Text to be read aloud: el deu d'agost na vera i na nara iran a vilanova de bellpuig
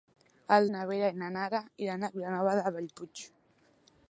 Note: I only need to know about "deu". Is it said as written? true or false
false